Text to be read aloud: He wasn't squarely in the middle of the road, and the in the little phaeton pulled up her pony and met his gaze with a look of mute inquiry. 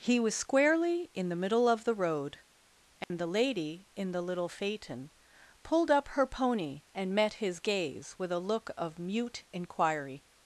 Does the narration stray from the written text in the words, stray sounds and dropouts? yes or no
yes